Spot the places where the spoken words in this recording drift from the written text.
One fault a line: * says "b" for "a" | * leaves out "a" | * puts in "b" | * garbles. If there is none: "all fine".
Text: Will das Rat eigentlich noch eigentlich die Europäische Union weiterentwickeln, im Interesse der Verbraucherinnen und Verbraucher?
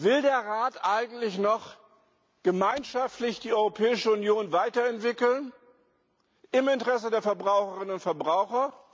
* says "der" for "das"
* says "gemeinschaftlich" for "eigentlich"